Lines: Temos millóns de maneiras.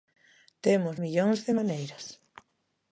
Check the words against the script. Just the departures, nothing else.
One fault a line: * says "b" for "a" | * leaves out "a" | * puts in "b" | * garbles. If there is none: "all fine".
all fine